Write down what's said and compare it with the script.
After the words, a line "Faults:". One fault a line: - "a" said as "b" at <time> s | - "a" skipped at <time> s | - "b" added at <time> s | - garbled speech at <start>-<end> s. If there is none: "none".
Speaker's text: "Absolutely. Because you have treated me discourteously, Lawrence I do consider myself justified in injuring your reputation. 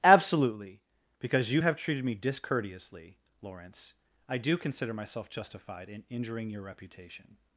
"Absolutely. Because you have treated me discourteously, Lawrence I do consider myself justified in injuring your reputation.
Faults:
none